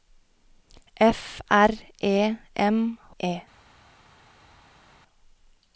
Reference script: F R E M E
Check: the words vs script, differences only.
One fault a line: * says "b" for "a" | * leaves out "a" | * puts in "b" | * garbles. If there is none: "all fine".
all fine